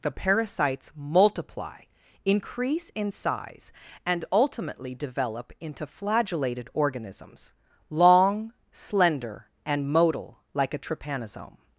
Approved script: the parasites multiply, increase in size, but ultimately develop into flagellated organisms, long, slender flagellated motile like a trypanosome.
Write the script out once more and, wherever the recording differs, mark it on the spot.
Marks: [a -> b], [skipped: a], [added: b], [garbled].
the parasites multiply, increase in size, [but -> and] ultimately develop into flagellated organisms, long, slender [flagellated -> and] motile like a trypanosome.